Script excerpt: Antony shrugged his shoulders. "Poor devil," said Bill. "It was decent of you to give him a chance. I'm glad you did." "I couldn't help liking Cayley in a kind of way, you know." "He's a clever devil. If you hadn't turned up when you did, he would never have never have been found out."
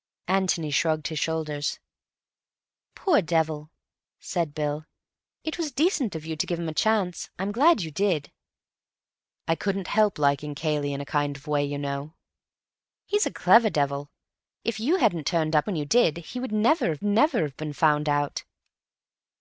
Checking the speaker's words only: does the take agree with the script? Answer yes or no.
yes